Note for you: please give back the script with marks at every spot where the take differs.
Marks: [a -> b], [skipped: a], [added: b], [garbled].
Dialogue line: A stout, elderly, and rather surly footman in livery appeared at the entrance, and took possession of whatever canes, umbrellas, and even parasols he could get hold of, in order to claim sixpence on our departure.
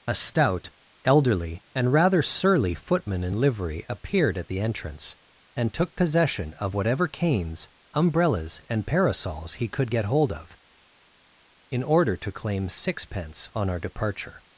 A stout, elderly, and rather surly footman in livery appeared at the entrance, and took possession of whatever canes, umbrellas, and [skipped: even] parasols he could get hold of, in order to claim sixpence on our departure.